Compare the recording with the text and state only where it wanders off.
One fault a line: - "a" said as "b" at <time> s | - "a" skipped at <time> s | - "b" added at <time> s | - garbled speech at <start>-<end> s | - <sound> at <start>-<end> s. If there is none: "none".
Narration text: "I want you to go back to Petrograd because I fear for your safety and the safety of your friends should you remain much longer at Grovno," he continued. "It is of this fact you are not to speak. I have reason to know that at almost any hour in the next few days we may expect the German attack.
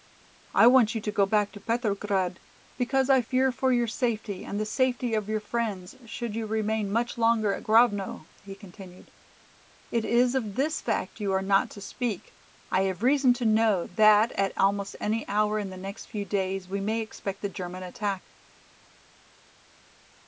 none